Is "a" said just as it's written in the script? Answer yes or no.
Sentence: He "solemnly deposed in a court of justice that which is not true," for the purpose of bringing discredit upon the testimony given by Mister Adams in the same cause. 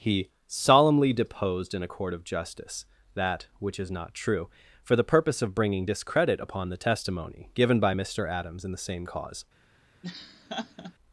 yes